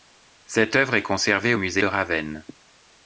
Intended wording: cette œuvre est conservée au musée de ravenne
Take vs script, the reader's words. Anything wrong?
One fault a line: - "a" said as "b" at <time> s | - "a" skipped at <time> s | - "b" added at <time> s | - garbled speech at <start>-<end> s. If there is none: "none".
none